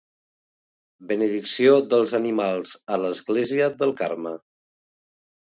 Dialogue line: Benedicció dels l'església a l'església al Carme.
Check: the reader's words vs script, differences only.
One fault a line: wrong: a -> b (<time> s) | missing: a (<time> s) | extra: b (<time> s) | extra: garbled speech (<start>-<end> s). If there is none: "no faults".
wrong: l'església -> animals (2.2 s)
wrong: al -> del (3.8 s)